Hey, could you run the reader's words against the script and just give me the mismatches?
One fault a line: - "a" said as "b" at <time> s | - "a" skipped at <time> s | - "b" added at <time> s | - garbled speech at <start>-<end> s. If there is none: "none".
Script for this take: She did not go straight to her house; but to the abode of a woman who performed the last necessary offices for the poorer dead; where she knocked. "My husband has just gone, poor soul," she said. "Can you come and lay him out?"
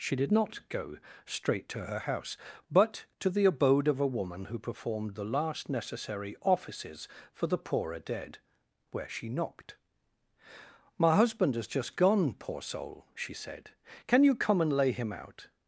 none